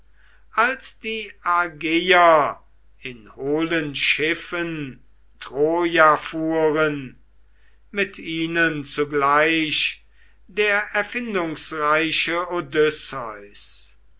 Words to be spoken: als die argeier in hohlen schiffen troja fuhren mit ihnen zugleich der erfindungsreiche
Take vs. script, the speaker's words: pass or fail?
pass